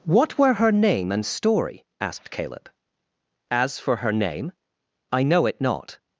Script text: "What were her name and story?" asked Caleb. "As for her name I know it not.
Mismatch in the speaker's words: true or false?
false